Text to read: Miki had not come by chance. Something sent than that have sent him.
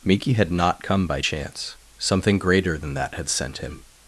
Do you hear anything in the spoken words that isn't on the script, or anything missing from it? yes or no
yes